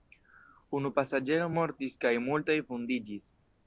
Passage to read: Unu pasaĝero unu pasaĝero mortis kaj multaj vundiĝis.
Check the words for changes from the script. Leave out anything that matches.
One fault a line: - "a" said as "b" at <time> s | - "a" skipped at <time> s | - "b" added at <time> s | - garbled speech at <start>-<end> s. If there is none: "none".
- "unu pasaĝero" skipped at 1.5 s